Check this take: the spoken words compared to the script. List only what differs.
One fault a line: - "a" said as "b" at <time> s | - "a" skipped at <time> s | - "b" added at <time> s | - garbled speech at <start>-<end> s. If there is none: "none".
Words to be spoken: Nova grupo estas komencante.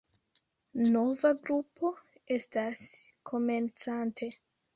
none